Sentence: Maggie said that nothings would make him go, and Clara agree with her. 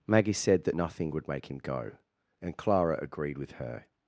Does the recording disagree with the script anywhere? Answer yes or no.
yes